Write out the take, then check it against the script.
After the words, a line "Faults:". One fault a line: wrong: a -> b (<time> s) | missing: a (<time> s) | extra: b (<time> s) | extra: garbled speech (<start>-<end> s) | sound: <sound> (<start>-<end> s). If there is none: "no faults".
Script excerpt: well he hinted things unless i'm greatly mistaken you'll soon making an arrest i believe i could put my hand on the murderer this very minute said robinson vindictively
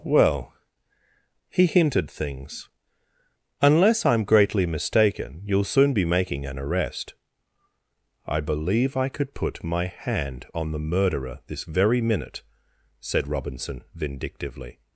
well he hinted things unless i'm greatly mistaken you'll soon be making an arrest i believe i could put my hand on the murderer this very minute said robinson vindictively
Faults:
extra: be (5.9 s)